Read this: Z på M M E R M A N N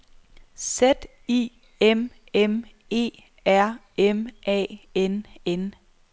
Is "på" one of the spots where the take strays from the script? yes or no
yes